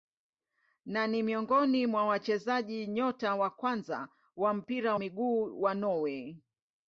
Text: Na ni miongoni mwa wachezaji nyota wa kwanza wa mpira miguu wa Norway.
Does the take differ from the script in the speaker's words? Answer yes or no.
no